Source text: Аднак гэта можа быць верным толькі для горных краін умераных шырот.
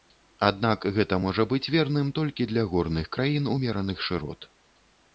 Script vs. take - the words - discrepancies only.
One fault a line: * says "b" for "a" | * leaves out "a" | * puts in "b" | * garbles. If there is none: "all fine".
all fine